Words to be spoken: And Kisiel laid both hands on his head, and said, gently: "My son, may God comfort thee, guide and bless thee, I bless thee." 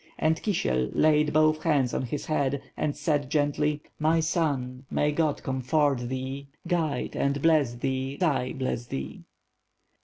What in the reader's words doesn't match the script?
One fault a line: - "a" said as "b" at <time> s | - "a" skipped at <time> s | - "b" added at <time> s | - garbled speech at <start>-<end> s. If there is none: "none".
none